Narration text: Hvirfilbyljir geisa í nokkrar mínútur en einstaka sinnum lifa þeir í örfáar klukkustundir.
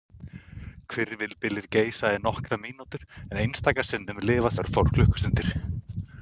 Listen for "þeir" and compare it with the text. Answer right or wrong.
wrong